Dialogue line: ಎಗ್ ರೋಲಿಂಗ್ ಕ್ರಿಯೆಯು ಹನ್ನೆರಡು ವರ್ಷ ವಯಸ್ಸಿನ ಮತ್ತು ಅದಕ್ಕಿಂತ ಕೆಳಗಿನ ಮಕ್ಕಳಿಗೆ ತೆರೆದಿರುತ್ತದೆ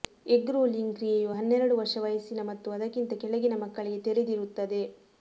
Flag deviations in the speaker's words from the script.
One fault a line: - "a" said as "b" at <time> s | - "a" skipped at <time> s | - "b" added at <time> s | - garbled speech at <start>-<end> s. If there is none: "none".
none